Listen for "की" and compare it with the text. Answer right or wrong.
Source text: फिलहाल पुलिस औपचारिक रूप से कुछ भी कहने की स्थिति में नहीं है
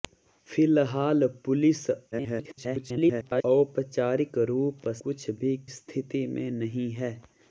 wrong